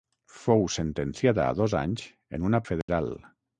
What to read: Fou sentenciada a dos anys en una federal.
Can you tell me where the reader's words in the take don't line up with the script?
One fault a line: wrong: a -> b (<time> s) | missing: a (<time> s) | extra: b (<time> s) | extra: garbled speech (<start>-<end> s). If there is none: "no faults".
no faults